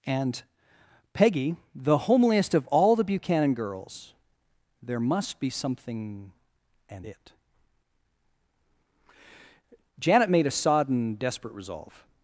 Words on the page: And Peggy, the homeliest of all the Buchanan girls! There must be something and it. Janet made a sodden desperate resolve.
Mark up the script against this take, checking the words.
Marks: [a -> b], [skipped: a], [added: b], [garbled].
And Peggy, the homeliest of all the Buchanan girls! There must be something and it. Janet made a sodden desperate resolve.